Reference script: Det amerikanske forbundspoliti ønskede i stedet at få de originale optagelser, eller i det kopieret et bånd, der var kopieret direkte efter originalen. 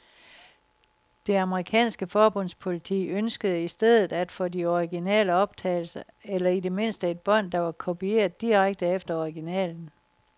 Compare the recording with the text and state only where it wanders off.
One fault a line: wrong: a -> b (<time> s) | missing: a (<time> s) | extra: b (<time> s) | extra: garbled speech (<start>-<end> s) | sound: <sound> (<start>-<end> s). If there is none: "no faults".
wrong: kopieret -> mindste (6.7 s)